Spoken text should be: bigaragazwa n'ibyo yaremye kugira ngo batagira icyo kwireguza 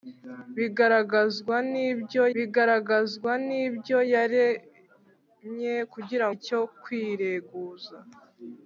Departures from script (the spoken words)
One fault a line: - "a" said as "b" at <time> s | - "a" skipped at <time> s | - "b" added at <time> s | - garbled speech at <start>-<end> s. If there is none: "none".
- "bigaragazwa n'ibyo" added at 2.3 s
- "ngo batagira" skipped at 6.3 s